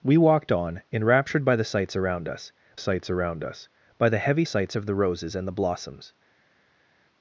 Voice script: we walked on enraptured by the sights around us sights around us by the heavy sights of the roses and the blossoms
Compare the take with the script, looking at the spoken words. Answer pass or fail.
pass